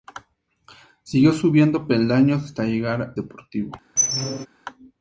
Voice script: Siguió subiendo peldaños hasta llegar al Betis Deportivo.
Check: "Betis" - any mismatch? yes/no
yes